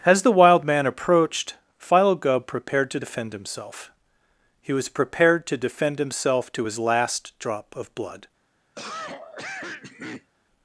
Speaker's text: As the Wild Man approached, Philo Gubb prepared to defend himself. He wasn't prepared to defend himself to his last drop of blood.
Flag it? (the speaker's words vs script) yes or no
yes